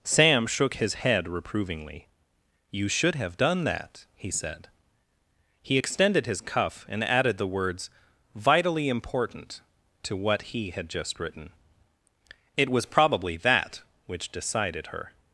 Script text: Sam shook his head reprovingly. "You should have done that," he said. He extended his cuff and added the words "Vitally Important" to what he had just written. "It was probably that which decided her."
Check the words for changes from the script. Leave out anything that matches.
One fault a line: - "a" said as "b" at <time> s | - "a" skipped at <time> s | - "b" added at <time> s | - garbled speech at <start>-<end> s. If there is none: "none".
none